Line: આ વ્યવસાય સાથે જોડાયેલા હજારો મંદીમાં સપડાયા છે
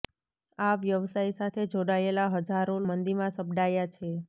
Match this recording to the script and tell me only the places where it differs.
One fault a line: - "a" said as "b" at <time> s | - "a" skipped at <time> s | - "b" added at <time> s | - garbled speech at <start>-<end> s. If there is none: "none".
none